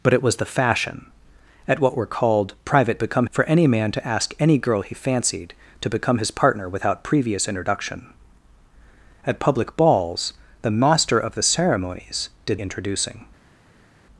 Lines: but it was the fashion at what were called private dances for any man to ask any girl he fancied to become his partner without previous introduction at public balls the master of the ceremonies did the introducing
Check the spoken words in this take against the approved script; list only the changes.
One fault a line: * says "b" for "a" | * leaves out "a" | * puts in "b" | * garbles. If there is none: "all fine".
* says "become" for "dances"
* leaves out "the"